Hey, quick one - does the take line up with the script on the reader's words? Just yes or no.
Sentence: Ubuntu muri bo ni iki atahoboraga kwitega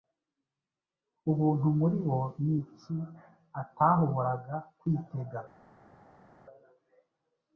yes